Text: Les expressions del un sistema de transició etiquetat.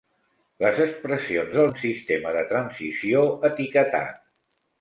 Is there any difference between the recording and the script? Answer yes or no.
no